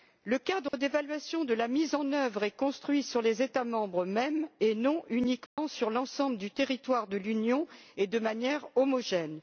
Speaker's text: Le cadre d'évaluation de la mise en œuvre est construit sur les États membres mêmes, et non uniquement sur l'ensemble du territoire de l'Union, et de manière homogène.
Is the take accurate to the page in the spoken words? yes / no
yes